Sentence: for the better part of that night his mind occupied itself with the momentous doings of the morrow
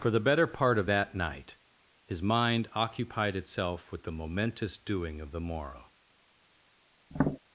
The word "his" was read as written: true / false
true